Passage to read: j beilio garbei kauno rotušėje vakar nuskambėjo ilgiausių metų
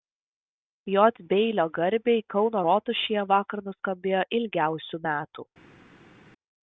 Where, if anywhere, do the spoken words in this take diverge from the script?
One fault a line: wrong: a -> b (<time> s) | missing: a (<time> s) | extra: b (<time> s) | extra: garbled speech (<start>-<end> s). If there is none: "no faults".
no faults